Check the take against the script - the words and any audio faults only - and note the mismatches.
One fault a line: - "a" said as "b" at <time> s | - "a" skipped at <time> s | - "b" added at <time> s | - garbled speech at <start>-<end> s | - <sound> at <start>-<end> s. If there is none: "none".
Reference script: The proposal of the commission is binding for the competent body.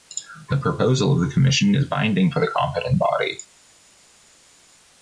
none